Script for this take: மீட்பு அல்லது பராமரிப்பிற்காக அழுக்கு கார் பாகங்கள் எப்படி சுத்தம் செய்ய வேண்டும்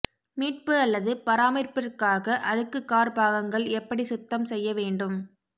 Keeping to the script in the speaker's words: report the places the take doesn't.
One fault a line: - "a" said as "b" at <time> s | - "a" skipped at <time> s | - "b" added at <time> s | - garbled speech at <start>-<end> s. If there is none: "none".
none